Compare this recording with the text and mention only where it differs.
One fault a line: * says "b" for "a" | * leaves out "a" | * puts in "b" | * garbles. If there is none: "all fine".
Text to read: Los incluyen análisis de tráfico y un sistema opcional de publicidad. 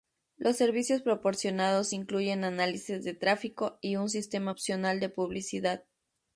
* puts in "servicios proporcionados"